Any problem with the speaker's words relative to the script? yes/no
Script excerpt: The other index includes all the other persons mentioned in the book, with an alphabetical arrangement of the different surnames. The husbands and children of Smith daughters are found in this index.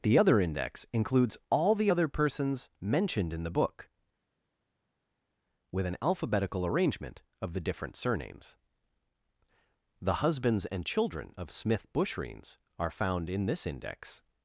yes